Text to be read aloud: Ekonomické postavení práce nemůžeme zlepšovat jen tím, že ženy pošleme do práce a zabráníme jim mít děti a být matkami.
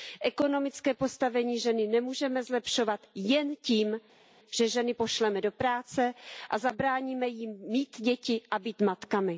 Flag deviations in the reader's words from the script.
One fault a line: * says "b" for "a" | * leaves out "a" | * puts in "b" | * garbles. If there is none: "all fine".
* says "ženy" for "práce"